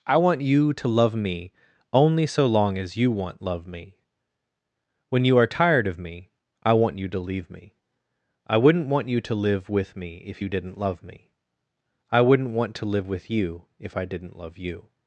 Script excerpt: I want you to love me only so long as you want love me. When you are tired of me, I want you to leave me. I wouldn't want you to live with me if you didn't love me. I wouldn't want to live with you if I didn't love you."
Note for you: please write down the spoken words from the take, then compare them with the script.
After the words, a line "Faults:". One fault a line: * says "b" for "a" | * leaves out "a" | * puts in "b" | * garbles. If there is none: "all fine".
I want you to love me only so long as you want love me. When you are tired of me, I want you to leave me. I wouldn't want you to live with me if you didn't love me. I wouldn't want to live with you if I didn't love you."
Faults:
all fine